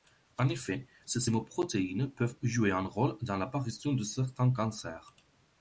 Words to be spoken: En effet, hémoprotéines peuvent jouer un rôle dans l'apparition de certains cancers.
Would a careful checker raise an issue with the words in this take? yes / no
yes